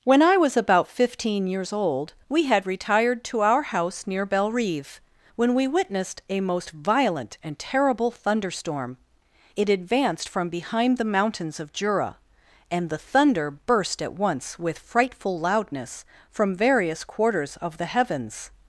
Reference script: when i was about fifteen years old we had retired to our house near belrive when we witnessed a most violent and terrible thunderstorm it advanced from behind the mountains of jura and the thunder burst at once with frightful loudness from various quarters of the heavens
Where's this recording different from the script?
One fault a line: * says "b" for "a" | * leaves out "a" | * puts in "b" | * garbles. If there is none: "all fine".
all fine